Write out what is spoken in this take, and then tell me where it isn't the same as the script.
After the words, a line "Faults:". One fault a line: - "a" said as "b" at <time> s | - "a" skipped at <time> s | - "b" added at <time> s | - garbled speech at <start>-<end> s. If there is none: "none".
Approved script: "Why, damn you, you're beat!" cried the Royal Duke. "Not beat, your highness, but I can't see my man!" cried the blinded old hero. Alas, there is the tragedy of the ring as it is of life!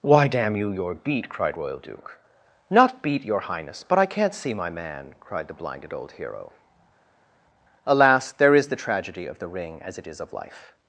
"Why, damn you, you're beat!" cried Royal Duke. "Not beat, your highness, but I can't see my man!" cried the blinded old hero. Alas, there is the tragedy of the ring as it is of life!
Faults:
- "the" skipped at 1.6 s